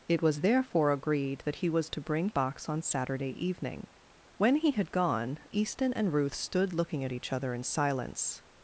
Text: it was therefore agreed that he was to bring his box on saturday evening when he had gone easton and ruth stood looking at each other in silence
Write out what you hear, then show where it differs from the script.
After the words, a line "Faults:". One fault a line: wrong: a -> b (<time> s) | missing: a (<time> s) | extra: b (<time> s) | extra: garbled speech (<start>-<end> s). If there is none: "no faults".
it was therefore agreed that he was to bring box on saturday evening when he had gone easton and ruth stood looking at each other in silence
Faults:
missing: his (2.3 s)